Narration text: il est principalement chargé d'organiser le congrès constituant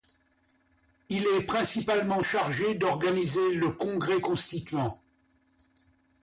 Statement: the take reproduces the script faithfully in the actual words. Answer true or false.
true